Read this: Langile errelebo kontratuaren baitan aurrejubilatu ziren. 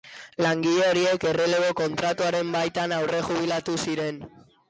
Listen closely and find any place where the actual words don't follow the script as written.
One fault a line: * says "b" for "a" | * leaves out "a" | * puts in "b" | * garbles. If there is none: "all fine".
* puts in "horiek"